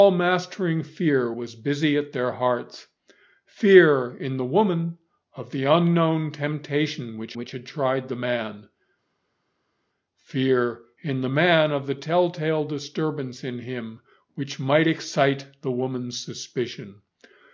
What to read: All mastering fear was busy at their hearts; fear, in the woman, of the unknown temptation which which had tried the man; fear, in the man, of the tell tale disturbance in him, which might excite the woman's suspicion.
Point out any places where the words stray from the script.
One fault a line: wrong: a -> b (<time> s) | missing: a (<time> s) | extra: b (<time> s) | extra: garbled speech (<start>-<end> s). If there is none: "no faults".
no faults